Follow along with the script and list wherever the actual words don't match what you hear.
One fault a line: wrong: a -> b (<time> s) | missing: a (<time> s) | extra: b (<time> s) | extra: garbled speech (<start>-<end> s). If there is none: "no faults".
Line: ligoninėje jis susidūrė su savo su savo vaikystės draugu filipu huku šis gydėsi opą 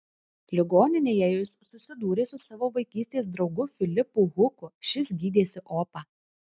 missing: su savo (2.7 s)